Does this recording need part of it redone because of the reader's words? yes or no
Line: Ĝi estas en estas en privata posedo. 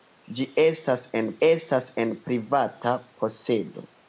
no